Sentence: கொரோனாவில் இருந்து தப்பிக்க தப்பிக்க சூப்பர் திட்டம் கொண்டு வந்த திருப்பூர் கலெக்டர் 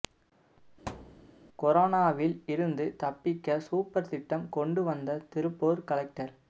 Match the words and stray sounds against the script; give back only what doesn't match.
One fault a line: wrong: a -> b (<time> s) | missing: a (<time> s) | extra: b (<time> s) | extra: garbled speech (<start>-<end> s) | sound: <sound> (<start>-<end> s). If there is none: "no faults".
sound: thud (0.9-1.3 s)
missing: தப்பிக்க (3.6 s)